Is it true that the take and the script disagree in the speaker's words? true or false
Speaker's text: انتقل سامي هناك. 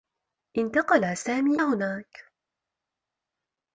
false